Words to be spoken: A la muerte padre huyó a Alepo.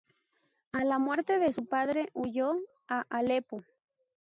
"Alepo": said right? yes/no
yes